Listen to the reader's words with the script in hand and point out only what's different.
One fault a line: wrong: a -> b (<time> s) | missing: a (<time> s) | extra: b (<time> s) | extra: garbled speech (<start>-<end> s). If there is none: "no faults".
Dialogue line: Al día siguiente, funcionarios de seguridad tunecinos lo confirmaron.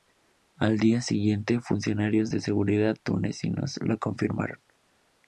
no faults